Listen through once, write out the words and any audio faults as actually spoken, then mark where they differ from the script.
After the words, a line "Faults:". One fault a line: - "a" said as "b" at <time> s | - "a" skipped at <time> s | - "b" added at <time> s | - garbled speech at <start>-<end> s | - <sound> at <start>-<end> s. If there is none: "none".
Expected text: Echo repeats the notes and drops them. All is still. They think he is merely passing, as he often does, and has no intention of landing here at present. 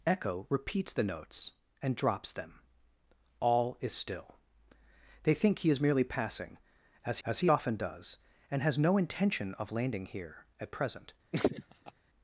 Echo repeats the notes and drops them. All is still. They think he is merely passing, as as he often does, and has no intention of landing here at present.
Faults:
- "as" added at 7.2 s
- laugh at 11.3-11.9 s